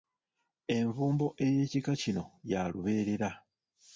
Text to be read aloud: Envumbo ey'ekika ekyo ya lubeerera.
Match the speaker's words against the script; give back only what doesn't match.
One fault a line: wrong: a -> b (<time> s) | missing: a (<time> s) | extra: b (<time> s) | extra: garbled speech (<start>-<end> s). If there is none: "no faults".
wrong: ekyo -> kino (2.0 s)